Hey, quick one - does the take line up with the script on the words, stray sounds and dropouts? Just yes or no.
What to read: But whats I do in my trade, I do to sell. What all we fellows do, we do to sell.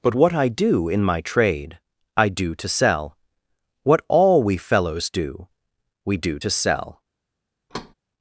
no